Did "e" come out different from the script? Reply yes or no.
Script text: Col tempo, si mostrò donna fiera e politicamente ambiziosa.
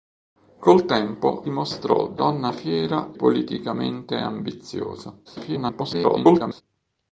yes